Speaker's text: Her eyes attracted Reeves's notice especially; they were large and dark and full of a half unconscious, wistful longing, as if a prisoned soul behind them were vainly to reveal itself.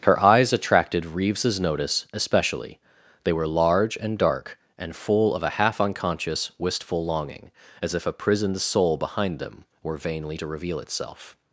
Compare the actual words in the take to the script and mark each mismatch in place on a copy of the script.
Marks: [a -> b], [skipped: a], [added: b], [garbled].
Her eyes attracted Reeves's notice especially; they were large and dark and full of a half unconscious, wistful longing, as if a prisoned soul behind them were vainly to reveal itself.